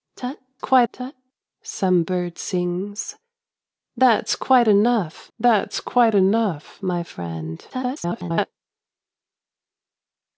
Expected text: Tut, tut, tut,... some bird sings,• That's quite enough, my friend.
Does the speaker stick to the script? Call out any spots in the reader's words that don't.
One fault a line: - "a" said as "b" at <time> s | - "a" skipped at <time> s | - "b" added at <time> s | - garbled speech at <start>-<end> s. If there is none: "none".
- "tut" said as "quite" at 0.6 s
- "That's quite enough" added at 5.4 s
- garbled speech at 7.7-8.5 s